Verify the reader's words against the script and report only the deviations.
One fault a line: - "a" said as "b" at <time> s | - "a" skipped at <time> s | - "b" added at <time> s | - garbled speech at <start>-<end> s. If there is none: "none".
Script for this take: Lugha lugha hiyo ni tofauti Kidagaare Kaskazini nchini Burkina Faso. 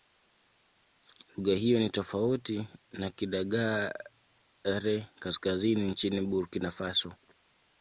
- "lugha" skipped at 1.6 s
- "na" added at 2.9 s